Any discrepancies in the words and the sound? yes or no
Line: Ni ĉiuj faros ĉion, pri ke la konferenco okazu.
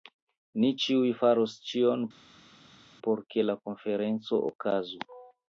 yes